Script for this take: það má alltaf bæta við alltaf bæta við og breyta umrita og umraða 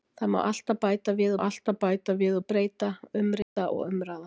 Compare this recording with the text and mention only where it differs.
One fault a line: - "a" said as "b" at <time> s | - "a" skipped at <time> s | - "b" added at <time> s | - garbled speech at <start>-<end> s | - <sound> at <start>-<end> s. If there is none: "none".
- dropout at 3.4-3.6 s